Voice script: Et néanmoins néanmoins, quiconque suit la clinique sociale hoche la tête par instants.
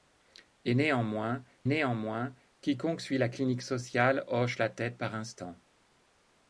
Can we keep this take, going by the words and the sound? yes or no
yes